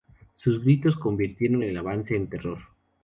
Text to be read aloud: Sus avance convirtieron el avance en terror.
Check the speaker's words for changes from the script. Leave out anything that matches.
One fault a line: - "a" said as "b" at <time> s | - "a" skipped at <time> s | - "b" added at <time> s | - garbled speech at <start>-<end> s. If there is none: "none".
- "avance" said as "gritos" at 0.6 s